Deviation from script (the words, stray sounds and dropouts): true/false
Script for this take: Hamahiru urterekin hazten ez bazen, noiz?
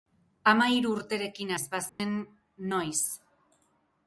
true